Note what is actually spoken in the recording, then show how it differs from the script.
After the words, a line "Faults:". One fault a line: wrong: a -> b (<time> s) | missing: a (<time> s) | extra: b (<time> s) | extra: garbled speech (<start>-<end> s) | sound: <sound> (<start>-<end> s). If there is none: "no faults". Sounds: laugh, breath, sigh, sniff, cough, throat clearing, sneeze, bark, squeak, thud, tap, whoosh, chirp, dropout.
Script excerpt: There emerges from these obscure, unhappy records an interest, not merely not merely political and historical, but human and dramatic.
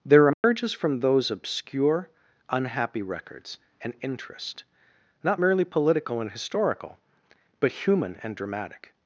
There emerges from those obscure, unhappy records an interest, not merely political and historical, but human and dramatic.
Faults:
sound: dropout (0.3-0.4 s)
wrong: these -> those (1.0 s)
missing: not merely (5.6 s)